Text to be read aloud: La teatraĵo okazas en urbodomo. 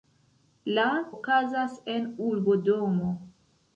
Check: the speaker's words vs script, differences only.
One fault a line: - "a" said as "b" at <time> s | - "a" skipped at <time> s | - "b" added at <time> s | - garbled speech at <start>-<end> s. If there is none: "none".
- "teatraĵo" skipped at 0.8 s